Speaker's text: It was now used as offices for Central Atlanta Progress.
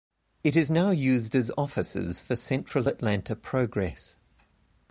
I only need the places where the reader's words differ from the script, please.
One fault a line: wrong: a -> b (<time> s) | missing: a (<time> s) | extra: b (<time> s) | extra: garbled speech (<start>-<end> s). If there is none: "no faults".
wrong: was -> is (0.6 s)